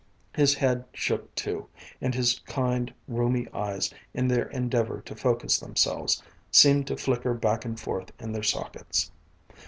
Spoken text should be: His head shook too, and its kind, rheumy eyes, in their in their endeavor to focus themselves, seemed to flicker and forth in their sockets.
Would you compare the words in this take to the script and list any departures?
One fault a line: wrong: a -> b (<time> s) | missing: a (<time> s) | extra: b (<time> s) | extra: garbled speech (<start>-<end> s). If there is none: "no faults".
wrong: its -> his (2.1 s)
missing: in their (4.5 s)
extra: back (7.3 s)